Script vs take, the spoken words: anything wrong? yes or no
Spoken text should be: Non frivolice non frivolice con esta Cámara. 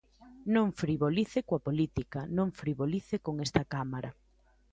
yes